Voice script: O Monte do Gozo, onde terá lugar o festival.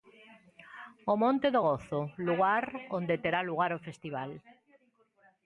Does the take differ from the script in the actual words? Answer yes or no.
yes